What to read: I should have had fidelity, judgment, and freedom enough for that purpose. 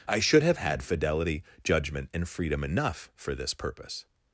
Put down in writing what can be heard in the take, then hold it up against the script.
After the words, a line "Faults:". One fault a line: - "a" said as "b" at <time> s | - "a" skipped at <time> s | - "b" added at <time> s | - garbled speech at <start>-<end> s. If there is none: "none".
I should have had fidelity, judgment, and freedom enough for this purpose.
Faults:
- "that" said as "this" at 3.4 s